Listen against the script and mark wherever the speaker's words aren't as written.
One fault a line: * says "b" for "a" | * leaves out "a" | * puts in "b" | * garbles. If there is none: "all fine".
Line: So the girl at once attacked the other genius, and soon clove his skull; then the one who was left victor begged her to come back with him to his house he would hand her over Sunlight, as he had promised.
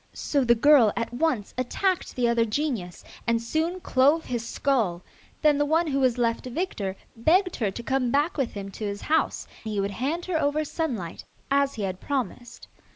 all fine